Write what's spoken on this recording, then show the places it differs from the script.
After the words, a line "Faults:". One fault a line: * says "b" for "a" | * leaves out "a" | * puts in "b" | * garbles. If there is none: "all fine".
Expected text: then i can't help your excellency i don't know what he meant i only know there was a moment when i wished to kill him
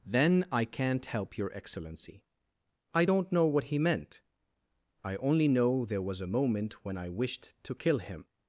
then i can't help your excellency i don't know what he meant i only know there was a moment when i wished to kill him
Faults:
all fine